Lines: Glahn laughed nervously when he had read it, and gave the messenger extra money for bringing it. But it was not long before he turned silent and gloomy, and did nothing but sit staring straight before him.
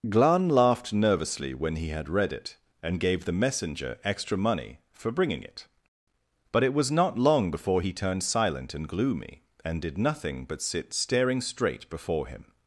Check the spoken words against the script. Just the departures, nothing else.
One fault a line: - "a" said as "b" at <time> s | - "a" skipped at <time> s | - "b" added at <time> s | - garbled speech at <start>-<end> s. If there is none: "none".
none